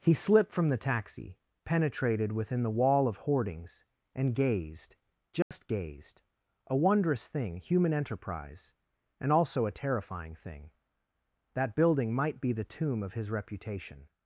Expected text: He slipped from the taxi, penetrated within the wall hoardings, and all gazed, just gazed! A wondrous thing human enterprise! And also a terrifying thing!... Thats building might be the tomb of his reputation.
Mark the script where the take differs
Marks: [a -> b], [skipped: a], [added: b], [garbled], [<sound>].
He slipped from the taxi, penetrated within the wall [added: of] hoardings, and [skipped: all] gazed, just [dropout] gazed! A wondrous thing human enterprise! And also a terrifying thing!... [Thats -> That] building might be the tomb of his reputation.